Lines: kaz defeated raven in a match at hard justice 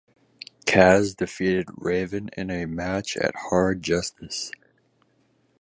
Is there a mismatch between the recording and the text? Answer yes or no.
no